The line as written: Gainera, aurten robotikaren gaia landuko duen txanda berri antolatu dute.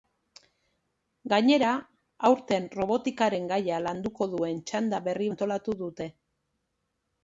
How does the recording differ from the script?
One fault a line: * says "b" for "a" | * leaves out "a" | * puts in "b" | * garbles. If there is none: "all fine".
all fine